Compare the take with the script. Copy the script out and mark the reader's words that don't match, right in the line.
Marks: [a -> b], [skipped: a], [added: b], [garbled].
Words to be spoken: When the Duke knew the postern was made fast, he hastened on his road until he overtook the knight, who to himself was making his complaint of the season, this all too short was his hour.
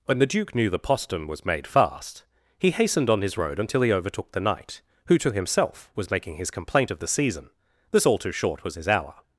When the Duke knew the postern was made fast, he hastened on his road until he overtook the knight, who to himself was making his complaint of the season, this all too short was his hour.